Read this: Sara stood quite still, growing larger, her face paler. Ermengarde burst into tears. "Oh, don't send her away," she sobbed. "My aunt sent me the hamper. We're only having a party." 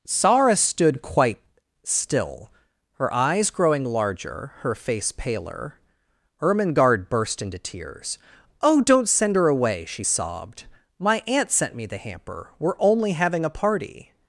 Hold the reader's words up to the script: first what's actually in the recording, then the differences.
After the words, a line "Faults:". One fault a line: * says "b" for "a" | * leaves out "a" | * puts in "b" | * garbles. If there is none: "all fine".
Sara stood quite still, her eyes growing larger, her face paler. Ermengarde burst into tears. "Oh, don't send her away," she sobbed. "My aunt sent me the hamper. We're only having a party."
Faults:
* puts in "her eyes"